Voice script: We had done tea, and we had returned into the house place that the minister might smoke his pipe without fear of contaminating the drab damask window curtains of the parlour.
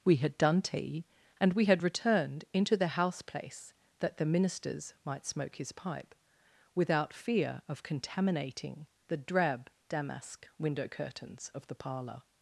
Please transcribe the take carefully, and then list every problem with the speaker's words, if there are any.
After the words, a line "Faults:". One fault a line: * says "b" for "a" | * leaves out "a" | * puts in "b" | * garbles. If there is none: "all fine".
We had done tea, and we had returned into the house place that the ministers might smoke his pipe without fear of contaminating the drab damask window curtains of the parlour.
Faults:
* says "ministers" for "minister"